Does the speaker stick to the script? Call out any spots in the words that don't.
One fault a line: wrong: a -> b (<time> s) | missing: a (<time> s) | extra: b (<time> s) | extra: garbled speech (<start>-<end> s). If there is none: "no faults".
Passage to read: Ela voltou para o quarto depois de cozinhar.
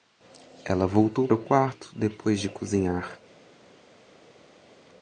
missing: para (1.3 s)